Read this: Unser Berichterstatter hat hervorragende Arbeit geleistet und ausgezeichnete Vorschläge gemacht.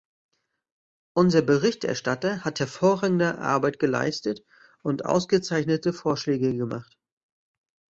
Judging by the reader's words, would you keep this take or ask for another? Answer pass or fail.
pass